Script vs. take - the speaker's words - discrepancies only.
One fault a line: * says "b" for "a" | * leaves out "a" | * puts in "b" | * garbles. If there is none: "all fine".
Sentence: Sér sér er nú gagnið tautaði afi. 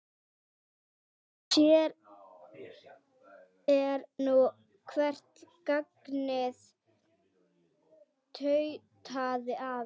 * leaves out "sér"
* puts in "hvert"